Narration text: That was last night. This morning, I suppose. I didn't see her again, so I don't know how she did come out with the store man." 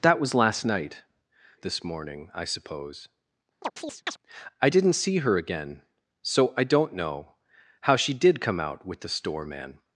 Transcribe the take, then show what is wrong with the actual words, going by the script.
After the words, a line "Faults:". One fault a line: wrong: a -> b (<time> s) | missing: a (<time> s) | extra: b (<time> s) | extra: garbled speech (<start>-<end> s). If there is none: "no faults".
That was last night. This morning, I suppose. I didn't see her again, so I don't know how she did come out with the store man."
Faults:
no faults